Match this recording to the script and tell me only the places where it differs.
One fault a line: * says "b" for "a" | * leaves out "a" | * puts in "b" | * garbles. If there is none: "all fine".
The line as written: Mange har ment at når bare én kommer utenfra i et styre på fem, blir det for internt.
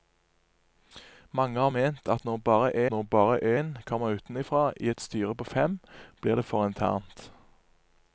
* puts in "når bare"